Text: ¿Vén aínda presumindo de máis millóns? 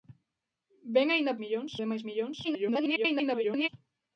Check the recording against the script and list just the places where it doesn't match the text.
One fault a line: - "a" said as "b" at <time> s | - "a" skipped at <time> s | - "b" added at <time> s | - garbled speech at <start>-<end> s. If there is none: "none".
- "presumindo" said as "millóns" at 1.4 s
- garbled speech at 2.4-3.7 s